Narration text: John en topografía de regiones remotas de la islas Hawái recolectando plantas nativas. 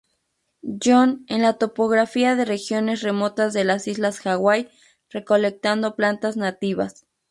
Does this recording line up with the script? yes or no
no